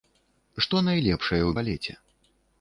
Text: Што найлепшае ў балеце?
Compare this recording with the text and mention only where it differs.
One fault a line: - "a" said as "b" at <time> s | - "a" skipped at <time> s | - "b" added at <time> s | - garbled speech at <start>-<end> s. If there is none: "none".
none